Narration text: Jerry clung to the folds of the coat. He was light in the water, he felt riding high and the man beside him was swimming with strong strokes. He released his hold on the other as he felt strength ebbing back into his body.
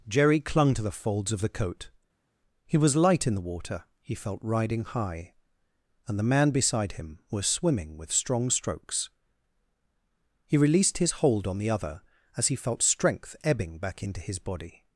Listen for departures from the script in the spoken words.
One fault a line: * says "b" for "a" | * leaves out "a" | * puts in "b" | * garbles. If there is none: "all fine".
all fine